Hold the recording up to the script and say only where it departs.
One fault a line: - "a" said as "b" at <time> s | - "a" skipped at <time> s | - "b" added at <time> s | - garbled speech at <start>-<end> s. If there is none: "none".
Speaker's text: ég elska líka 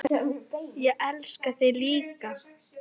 - "þig" added at 1.6 s